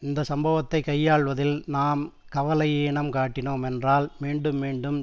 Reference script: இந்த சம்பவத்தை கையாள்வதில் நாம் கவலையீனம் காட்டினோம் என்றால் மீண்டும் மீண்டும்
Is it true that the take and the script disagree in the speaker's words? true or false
false